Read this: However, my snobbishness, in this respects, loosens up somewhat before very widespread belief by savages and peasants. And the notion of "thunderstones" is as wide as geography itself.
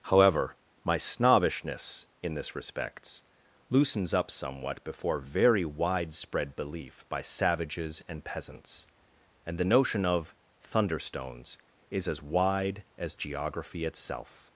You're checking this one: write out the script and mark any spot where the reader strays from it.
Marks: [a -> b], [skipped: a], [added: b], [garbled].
However, my snobbishness, in this respects, loosens up somewhat before very widespread belief by savages and peasants. And the notion of "thunderstones" is as wide as geography itself.